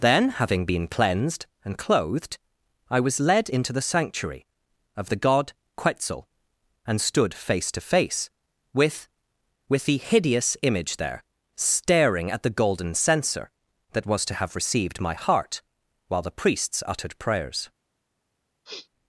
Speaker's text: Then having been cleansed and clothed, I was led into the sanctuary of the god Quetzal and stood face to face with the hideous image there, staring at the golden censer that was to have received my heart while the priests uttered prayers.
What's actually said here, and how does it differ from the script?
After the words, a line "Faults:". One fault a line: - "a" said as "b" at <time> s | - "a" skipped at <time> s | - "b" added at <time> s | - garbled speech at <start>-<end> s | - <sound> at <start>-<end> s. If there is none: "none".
Then having been cleansed and clothed, I was led into the sanctuary of the god Quetzal and stood face to face with with the hideous image there, staring at the golden censer that was to have received my heart while the priests uttered prayers.
Faults:
- "with" added at 9.7 s
- sniff at 18.6-18.9 s